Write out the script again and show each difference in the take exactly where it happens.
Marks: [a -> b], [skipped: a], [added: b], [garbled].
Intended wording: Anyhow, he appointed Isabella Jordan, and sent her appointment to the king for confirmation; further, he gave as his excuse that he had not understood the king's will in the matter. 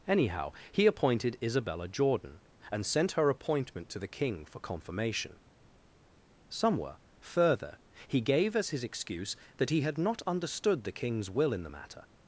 Anyhow, he appointed Isabella Jordan, and sent her appointment to the king for confirmation; [added: somewhere] further, he gave as his excuse that he had not understood the king's will in the matter.